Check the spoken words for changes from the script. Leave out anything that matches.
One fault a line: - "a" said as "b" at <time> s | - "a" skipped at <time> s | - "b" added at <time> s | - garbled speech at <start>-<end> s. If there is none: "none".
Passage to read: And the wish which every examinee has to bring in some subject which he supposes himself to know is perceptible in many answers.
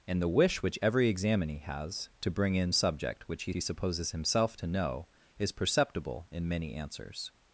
- "some" skipped at 2.7 s
- "he" added at 3.5 s